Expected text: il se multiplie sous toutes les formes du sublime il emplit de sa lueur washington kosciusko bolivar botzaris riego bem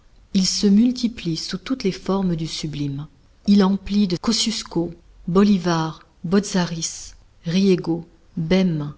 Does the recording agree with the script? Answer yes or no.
no